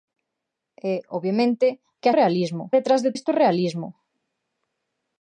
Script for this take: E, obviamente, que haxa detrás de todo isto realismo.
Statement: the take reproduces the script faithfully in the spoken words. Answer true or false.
false